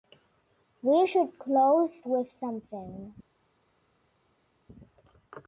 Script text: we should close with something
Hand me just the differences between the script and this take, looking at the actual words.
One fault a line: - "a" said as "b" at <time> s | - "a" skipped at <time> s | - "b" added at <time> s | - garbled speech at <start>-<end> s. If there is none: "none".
none